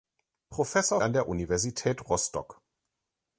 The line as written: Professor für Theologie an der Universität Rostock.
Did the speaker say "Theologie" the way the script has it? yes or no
no